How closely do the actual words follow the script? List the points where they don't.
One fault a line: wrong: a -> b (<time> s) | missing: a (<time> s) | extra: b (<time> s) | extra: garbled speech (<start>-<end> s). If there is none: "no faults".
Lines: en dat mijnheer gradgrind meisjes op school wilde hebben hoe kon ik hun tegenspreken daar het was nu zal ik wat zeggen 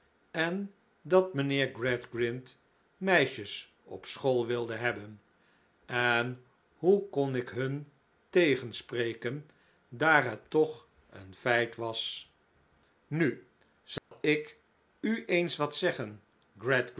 extra: en (5.8 s)
extra: toch een feit (10.5 s)
extra: u eens (15.0 s)